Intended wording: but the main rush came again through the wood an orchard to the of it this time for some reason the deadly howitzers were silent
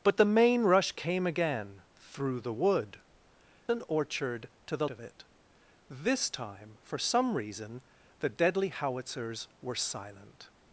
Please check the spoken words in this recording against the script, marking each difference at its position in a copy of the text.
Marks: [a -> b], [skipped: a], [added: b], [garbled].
but the main rush came again through the wood an orchard to the of it this time for some reason the deadly howitzers were silent